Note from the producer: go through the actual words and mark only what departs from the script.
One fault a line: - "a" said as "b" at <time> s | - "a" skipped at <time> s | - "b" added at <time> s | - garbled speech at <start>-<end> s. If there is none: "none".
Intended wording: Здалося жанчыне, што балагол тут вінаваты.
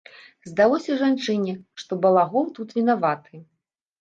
none